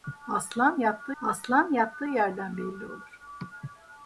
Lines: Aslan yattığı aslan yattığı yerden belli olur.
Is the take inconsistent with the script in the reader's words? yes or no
no